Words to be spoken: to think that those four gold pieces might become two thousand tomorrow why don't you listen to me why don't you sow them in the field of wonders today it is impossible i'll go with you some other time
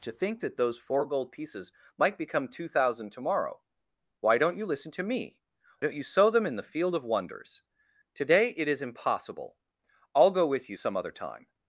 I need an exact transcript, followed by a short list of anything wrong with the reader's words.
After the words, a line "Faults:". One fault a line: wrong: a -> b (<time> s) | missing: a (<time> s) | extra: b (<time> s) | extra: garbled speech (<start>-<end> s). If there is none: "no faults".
to think that those four gold pieces might become two thousand tomorrow why don't you listen to me don't you sow them in the field of wonders today it is impossible i'll go with you some other time
Faults:
missing: why (5.4 s)